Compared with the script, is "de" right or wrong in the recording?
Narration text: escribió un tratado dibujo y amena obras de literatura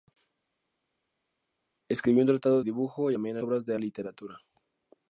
right